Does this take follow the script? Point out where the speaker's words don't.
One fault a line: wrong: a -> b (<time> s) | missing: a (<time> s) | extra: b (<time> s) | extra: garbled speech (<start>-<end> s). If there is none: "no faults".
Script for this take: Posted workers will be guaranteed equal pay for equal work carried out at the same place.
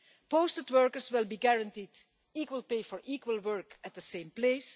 missing: carried out (3.8 s)